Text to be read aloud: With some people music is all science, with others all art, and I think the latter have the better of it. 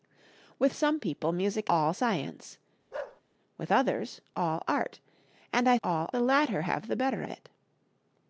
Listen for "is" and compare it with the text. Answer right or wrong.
wrong